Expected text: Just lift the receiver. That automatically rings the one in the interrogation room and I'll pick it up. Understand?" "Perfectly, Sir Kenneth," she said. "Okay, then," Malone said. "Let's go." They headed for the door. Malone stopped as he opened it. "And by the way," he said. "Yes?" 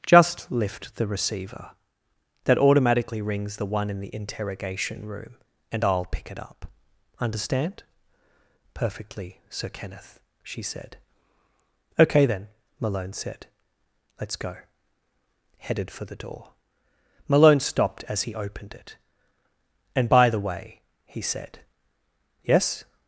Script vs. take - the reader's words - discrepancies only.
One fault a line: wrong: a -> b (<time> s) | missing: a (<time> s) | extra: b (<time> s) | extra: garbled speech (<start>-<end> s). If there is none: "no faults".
missing: They (14.6 s)